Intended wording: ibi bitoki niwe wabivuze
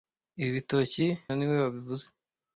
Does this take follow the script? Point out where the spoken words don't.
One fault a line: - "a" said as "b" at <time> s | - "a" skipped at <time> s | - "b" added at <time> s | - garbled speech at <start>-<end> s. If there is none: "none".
none